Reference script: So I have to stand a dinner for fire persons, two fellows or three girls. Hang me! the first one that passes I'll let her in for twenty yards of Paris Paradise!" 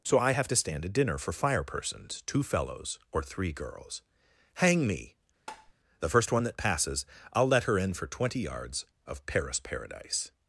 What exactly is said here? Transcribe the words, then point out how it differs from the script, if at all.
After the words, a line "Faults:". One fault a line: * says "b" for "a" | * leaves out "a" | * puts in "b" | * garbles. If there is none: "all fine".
So I have to stand a dinner for fire persons, two fellows or three girls. Hang me! the first one that passes I'll let her in for twenty yards of Paris Paradise!"
Faults:
all fine